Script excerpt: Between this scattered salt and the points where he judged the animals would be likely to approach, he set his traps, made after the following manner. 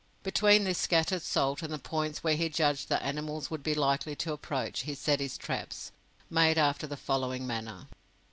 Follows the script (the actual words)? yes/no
yes